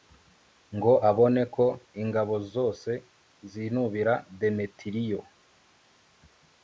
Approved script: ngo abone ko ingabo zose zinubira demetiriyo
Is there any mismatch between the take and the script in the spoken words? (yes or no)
no